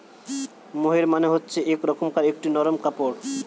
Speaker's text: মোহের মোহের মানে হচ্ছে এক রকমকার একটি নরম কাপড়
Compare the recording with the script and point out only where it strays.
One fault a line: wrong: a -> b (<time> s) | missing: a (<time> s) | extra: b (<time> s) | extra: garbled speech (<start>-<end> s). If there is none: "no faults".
missing: মোহের (1.1 s)